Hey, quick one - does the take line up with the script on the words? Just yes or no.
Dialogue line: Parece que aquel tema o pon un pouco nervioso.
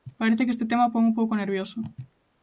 no